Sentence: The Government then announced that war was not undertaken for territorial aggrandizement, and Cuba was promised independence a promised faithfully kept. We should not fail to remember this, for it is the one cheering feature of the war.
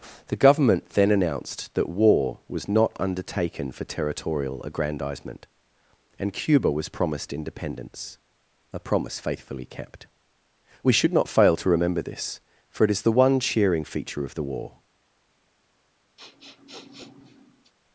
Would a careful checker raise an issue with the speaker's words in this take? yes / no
yes